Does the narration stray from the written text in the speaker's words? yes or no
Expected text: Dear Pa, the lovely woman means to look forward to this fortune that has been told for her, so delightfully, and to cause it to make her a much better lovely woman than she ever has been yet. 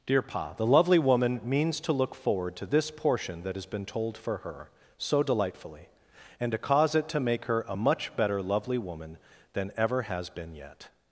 yes